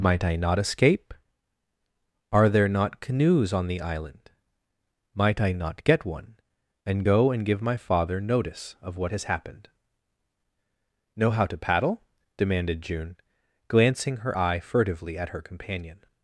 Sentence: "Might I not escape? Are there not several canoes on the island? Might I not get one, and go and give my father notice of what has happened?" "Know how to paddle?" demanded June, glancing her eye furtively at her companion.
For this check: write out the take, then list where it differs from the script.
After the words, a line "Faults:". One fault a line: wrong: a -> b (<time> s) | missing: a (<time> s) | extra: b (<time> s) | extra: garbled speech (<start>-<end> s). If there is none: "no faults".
"Might I not escape? Are there not canoes on the island? Might I not get one, and go and give my father notice of what has happened?" "Know how to paddle?" demanded June, glancing her eye furtively at her companion.
Faults:
missing: several (3.0 s)